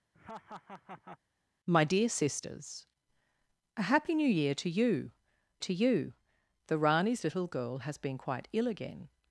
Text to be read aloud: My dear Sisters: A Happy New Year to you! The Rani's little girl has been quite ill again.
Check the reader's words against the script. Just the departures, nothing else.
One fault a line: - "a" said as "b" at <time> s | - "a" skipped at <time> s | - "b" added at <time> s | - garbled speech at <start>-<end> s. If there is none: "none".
- "to you" added at 5.6 s